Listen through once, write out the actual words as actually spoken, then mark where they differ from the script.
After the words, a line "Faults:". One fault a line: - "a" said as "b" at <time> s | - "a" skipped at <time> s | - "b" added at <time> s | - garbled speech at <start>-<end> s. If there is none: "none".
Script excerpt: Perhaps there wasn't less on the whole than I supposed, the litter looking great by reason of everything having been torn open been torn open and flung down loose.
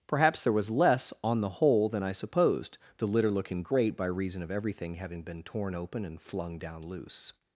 Perhaps there was less on the whole than I supposed, the litter looking great by reason of everything having been torn open and flung down loose.
Faults:
- "wasn't" said as "was" at 0.5 s
- "been torn open" skipped at 6.0 s